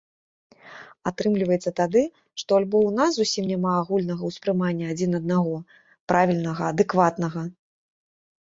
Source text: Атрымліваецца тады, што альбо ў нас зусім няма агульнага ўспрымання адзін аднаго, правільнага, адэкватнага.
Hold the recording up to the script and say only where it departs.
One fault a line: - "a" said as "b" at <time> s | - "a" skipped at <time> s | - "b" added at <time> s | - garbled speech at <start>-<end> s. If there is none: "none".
none